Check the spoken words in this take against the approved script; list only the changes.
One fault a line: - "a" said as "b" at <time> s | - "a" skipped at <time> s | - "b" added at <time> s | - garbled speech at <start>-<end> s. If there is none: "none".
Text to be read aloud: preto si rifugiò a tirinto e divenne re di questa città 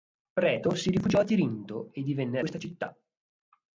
- "re di" skipped at 2.4 s